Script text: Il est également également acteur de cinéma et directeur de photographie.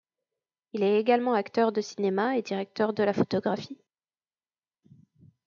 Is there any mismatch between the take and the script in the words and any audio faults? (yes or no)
yes